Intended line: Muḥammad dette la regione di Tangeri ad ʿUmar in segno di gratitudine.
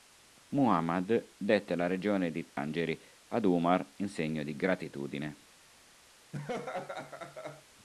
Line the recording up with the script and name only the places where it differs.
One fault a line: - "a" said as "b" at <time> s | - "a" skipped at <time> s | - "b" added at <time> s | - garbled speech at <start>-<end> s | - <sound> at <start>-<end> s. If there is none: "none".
- dropout at 2.5-2.6 s
- laugh at 6.3-7.6 s